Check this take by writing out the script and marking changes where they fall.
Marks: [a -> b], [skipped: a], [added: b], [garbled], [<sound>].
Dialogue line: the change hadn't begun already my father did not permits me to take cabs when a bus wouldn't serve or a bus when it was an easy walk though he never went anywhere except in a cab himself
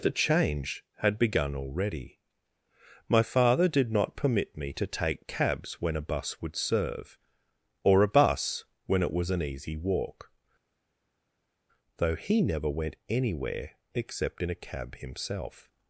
the change [hadn't -> had] begun already my father did not [permits -> permit] me to take cabs when a bus [wouldn't -> would] serve or a bus when it was an easy walk though he never went anywhere except in a cab himself